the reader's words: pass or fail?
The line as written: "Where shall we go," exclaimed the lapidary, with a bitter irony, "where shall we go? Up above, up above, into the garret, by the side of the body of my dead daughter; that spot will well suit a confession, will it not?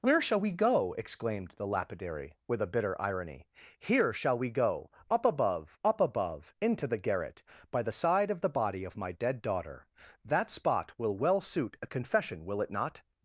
fail